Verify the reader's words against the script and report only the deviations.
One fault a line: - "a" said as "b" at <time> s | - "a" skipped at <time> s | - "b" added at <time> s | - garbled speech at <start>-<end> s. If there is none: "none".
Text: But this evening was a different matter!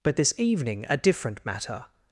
- "was" skipped at 0.9 s